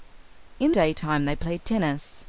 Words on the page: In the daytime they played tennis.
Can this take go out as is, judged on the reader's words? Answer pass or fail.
fail